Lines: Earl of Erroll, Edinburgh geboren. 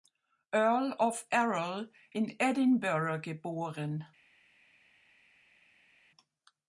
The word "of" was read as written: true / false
true